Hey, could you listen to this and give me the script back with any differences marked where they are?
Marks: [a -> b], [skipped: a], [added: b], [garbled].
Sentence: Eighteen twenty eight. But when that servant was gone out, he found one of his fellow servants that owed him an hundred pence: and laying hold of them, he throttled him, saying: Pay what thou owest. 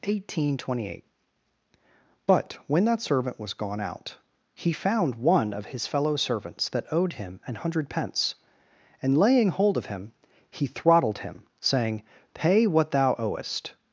Eighteen twenty eight. But when that servant was gone out, he found one of his fellow servants that owed him an hundred pence: and laying hold of [them, -> him] he throttled him, saying: Pay what thou owest.